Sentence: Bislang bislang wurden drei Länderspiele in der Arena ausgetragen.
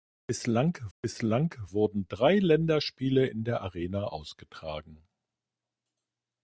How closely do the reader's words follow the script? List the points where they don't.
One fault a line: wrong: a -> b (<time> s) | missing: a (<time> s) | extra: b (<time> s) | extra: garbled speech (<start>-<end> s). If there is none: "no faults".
no faults